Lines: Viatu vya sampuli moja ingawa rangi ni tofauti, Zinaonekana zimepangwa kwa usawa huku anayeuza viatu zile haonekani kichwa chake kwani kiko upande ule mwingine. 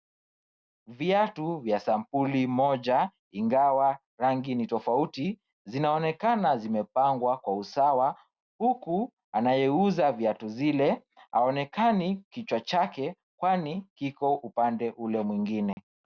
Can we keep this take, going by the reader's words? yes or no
yes